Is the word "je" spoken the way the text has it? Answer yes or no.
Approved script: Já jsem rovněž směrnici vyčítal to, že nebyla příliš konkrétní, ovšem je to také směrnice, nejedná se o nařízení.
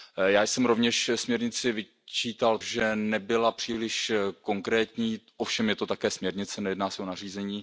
yes